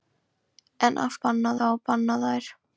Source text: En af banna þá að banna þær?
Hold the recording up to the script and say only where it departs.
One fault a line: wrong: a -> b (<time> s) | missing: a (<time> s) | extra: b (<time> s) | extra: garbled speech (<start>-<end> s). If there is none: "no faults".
no faults